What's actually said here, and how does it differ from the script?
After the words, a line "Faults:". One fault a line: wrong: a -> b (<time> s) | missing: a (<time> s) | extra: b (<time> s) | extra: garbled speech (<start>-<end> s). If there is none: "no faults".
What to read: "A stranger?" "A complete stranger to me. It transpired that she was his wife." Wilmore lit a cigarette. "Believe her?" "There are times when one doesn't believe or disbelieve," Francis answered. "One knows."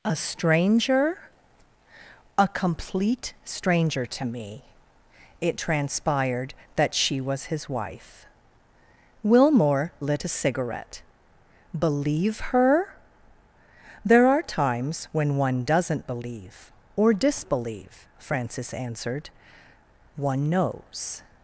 "A stranger?" "A complete stranger to me. It transpired that she was his wife." Wilmore lit a cigarette. "Believe her?" "There are times when one doesn't believe or disbelieve," Francis answered. "One knows."
Faults:
no faults